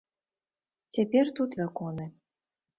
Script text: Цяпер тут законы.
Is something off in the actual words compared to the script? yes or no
no